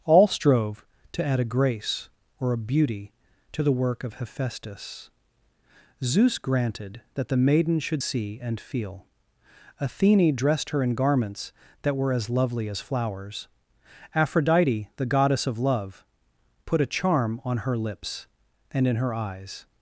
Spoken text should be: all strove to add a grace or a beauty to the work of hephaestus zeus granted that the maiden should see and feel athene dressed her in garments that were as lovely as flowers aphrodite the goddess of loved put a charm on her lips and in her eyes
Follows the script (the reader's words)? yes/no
no